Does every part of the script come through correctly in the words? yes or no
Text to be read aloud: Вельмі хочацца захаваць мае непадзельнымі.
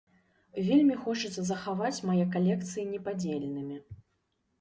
no